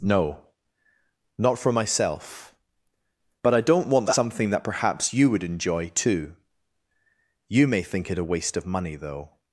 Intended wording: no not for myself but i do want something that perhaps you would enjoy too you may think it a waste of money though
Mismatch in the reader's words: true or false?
true